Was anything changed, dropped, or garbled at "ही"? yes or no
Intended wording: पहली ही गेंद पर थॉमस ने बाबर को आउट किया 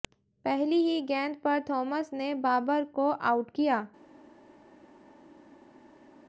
no